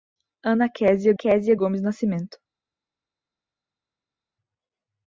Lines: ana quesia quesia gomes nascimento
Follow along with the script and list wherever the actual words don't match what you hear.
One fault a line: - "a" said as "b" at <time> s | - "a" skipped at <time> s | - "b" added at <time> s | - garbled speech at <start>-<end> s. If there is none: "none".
none